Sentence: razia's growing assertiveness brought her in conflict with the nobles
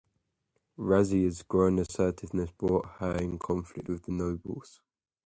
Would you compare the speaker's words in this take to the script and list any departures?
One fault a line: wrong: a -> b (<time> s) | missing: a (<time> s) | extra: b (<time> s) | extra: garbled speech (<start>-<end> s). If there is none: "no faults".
no faults